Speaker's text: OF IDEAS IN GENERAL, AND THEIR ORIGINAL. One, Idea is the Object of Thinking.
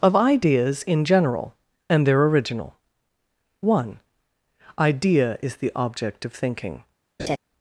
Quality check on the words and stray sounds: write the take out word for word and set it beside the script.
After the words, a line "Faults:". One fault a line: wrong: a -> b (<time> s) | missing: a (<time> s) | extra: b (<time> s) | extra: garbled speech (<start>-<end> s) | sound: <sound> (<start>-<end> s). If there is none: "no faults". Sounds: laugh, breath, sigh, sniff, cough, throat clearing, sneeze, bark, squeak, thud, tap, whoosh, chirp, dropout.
OF IDEAS IN GENERAL, AND THEIR ORIGINAL. One, Idea is the Object of Thinking.
Faults:
sound: laugh (7.2-7.4 s)